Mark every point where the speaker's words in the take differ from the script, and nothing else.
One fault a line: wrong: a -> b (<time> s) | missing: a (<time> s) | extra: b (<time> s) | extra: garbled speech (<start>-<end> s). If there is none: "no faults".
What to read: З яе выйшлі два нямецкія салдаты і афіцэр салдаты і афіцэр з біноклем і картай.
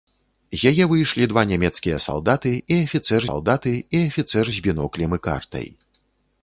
no faults